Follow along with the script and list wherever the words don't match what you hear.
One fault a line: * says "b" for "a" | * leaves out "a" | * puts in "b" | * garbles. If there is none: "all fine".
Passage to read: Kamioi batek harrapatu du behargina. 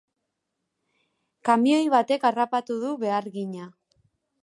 all fine